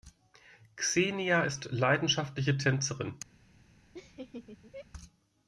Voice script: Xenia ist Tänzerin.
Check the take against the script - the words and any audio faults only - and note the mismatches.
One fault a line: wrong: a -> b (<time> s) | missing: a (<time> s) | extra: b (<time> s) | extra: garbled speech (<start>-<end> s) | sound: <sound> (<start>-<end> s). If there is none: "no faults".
extra: leidenschaftliche (1.7 s)
sound: laugh (3.9-4.9 s)